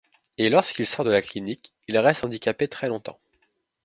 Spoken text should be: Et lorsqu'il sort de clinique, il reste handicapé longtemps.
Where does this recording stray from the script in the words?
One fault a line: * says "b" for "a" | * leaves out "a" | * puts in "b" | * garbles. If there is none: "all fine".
* puts in "la"
* puts in "très"